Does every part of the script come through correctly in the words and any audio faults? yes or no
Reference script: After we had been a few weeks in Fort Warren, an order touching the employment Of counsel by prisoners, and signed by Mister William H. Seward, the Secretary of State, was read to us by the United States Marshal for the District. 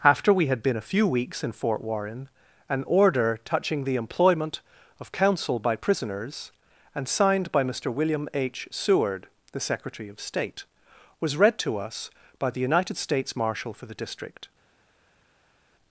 yes